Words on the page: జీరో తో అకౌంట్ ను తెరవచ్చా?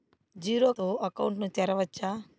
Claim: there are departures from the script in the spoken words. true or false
false